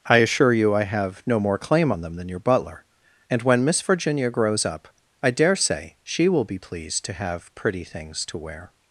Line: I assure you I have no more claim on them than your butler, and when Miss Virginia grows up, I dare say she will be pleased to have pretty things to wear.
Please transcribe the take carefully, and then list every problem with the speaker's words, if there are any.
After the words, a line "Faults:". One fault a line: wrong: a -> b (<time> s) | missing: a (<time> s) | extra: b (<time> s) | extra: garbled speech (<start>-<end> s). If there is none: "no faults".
I assure you I have no more claim on them than your butler, and when Miss Virginia grows up, I dare say she will be pleased to have pretty things to wear.
Faults:
no faults